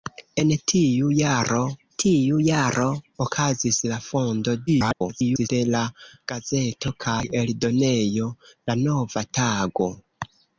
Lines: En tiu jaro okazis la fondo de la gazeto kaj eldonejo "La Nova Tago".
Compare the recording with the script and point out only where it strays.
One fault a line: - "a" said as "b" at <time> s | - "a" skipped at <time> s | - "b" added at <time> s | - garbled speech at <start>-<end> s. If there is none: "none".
- "tiu jaro" added at 2.0 s
- garbled speech at 4.7-5.5 s